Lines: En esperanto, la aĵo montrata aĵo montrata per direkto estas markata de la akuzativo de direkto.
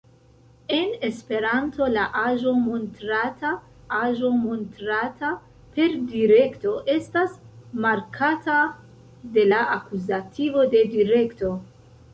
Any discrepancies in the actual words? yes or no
no